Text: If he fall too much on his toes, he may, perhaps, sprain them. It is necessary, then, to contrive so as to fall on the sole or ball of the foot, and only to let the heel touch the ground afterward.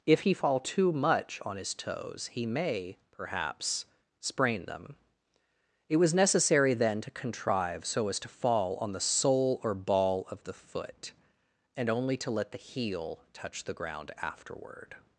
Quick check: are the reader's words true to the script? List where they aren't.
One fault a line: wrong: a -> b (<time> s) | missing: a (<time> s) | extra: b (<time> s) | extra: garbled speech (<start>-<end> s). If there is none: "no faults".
wrong: is -> was (6.0 s)